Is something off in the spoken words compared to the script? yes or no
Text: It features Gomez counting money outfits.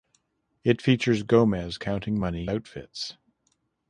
no